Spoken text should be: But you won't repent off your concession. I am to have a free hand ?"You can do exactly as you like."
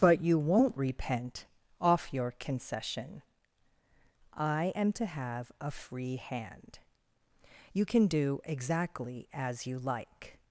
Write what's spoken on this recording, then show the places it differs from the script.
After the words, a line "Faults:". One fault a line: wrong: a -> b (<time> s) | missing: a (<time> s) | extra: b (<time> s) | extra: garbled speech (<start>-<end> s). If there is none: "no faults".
But you won't repent off your concession. I am to have a free hand ?"You can do exactly as you like."
Faults:
no faults